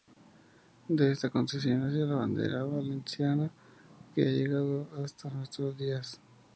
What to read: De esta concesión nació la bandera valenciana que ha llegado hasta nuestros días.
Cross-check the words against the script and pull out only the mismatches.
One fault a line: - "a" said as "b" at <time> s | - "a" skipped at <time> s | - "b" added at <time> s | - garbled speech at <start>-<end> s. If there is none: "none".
none